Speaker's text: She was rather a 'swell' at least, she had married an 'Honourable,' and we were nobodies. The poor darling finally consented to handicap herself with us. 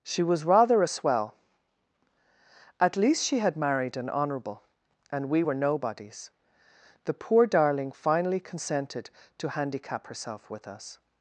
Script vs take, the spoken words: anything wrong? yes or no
no